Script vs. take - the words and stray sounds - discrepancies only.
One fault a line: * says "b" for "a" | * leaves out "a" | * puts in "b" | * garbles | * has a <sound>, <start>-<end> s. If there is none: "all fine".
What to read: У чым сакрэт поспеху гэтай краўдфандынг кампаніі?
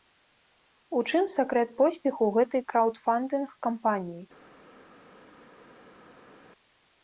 all fine